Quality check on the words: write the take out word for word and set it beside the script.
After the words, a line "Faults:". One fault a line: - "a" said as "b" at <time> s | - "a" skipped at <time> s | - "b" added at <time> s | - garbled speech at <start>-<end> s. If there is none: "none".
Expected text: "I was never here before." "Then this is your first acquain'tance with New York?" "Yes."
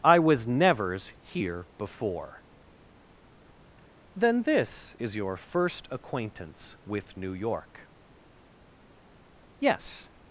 "I was nevers here before." "Then this is your first acquain'tance with New York?" "Yes."
Faults:
- "never" said as "nevers" at 0.5 s